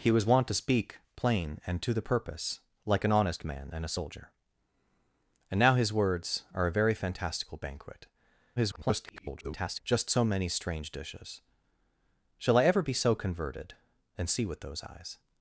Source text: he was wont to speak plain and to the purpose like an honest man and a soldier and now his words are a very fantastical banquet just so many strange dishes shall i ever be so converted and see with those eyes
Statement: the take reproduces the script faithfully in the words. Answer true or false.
false